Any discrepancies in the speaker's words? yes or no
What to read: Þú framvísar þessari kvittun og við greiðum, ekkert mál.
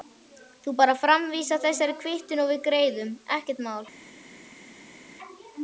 yes